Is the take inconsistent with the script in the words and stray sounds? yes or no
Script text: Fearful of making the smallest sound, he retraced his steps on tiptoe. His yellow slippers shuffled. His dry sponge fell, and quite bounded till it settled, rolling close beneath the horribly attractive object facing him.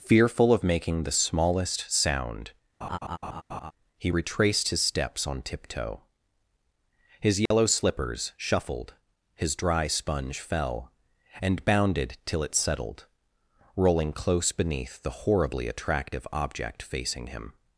yes